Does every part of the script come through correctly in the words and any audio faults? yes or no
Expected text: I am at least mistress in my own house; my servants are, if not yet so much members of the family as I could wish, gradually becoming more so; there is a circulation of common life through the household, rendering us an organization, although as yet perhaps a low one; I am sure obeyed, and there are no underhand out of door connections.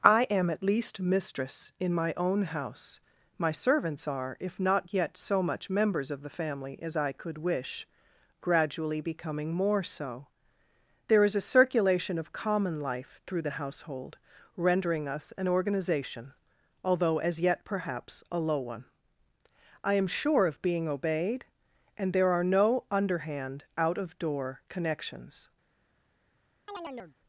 no